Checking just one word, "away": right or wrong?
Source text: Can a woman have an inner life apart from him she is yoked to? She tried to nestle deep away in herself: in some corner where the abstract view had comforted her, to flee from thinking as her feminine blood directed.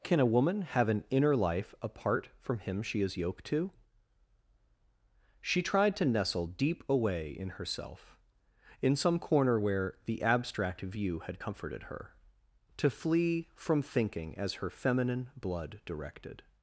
right